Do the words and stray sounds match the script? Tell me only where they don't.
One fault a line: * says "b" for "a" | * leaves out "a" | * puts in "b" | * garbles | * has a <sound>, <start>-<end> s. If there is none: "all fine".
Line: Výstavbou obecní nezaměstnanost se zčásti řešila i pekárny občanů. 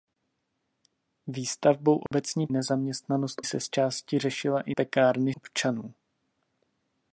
* has a dropout, 2.1-2.1 s